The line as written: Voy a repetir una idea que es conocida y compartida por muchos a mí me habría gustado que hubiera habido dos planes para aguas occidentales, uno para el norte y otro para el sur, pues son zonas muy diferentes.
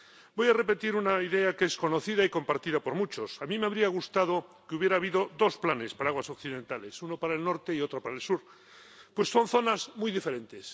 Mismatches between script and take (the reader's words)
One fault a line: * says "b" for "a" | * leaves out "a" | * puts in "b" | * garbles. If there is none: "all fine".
all fine